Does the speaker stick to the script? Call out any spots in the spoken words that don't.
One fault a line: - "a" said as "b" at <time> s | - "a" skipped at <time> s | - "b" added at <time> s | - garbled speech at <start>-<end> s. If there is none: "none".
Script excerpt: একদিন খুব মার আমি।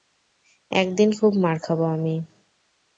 - "খাবো" added at 1.6 s